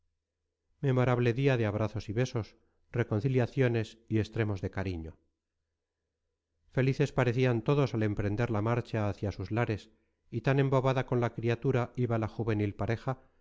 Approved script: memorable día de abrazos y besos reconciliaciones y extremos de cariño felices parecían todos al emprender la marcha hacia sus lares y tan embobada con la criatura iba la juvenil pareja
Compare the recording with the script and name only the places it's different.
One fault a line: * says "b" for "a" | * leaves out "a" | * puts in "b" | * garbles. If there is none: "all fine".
all fine